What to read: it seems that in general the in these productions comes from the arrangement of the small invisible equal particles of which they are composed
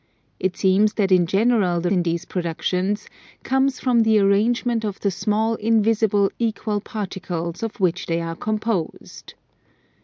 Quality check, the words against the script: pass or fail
pass